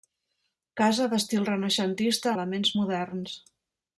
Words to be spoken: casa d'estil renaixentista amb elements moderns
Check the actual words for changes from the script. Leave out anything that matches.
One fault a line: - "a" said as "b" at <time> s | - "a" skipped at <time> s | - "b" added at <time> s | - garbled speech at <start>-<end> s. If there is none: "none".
- "amb" skipped at 2.3 s